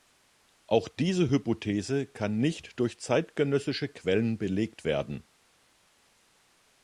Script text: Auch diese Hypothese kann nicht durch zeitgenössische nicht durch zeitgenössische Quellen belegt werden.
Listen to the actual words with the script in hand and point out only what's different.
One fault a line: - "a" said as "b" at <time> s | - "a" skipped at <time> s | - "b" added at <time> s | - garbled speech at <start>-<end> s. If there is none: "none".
- "nicht durch zeitgenössische" skipped at 3.9 s